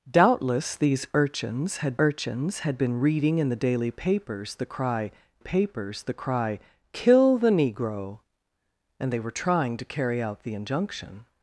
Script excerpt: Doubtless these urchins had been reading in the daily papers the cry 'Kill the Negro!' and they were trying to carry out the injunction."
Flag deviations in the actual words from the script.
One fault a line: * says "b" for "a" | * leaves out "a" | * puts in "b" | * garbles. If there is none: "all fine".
* puts in "urchins had"
* puts in "papers the cry"